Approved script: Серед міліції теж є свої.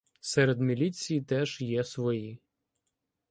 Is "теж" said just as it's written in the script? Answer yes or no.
yes